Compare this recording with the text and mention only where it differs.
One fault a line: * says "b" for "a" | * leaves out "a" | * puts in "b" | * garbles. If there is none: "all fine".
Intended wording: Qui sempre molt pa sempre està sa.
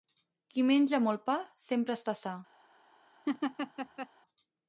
* says "menja" for "sempre"